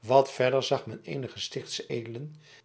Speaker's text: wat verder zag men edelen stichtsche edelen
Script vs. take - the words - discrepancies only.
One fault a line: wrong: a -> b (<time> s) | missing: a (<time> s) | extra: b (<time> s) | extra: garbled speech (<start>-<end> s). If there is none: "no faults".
wrong: edelen -> eenige (1.0 s)